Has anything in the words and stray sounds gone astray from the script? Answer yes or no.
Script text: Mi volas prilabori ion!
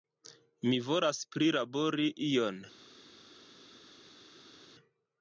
no